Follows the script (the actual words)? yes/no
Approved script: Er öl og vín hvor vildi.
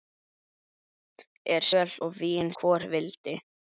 yes